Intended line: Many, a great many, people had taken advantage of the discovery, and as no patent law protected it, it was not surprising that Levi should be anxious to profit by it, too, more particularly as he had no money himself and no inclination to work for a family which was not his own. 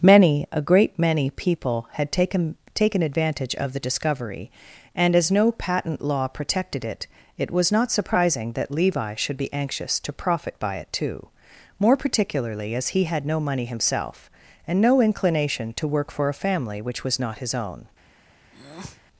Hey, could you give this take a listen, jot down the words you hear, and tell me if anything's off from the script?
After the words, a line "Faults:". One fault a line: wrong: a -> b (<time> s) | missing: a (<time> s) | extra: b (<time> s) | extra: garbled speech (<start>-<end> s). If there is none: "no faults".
Many, a great many, people had taken taken advantage of the discovery, and as no patent law protected it, it was not surprising that Levi should be anxious to profit by it, too, more particularly as he had no money himself and no inclination to work for a family which was not his own.
Faults:
extra: taken (2.7 s)